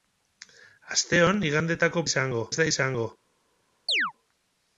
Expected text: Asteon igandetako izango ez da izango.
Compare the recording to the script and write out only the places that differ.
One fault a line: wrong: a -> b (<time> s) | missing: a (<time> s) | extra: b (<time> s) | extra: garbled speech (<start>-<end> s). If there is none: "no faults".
no faults